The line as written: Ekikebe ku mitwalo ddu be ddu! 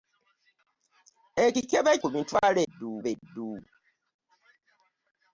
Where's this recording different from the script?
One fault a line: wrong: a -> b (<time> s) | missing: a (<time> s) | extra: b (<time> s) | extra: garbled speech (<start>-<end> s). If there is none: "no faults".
no faults